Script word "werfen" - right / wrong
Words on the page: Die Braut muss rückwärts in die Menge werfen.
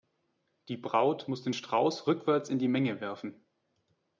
right